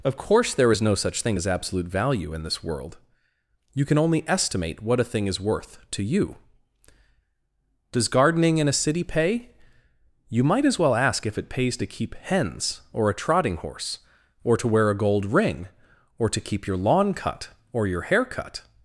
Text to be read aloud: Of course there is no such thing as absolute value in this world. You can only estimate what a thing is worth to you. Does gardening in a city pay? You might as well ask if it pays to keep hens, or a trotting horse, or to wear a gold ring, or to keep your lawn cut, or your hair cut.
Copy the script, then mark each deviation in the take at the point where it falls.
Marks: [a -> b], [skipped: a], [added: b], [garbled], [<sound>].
Of course there is no such thing as absolute value in this world. You can only estimate what a thing is worth to you. Does gardening in a city pay? You might as well ask if it pays to keep hens, or a trotting horse, or to wear a gold ring, or to keep your lawn cut, or your hair cut.